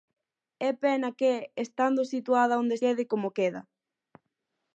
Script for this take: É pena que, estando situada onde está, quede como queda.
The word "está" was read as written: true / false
false